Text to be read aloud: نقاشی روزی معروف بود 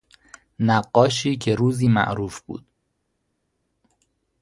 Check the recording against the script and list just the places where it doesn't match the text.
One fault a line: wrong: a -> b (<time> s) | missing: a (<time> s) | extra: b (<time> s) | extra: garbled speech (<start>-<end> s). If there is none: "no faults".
extra: که (1.4 s)